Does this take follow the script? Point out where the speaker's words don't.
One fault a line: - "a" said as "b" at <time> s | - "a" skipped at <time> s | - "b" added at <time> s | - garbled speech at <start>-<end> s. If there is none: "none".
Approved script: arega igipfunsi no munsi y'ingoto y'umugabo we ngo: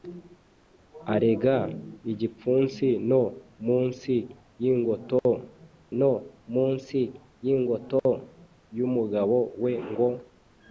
- "no munsi y'ingoto" added at 6.0 s